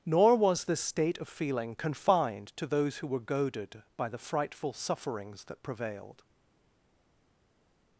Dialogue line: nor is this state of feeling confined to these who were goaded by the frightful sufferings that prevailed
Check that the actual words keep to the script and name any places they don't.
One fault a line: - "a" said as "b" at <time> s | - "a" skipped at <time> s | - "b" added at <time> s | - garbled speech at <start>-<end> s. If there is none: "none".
- "is" said as "was" at 0.3 s
- "these" said as "those" at 2.6 s